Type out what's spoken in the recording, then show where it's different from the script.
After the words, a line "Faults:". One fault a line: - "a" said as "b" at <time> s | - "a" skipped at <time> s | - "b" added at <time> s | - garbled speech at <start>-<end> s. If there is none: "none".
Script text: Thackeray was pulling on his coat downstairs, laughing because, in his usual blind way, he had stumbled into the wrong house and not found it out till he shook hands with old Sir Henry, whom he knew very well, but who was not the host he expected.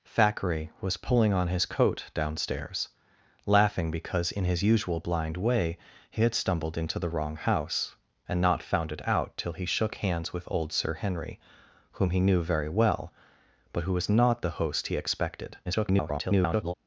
Thackeray was pulling on his coat downstairs, laughing because, in his usual blind way, he had stumbled into the wrong house and not found it out till he shook hands with old Sir Henry, whom he knew very well, but who was not the host he expected. [garbled]
Faults:
- garbled speech at 15.6-16.7 s